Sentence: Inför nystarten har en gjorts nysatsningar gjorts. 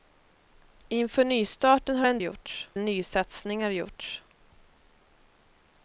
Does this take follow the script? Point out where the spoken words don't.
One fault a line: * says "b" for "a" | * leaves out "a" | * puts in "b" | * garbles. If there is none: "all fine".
all fine